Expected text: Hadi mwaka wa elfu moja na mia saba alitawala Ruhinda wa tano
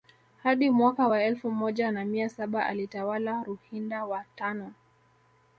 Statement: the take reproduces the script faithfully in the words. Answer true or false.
true